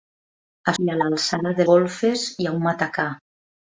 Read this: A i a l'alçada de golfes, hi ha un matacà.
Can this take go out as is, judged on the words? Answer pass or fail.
pass